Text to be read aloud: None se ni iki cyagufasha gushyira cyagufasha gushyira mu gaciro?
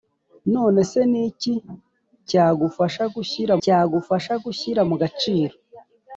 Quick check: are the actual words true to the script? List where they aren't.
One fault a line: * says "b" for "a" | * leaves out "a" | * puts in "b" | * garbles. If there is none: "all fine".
all fine